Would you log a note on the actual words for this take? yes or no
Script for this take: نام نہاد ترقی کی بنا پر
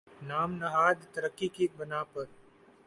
no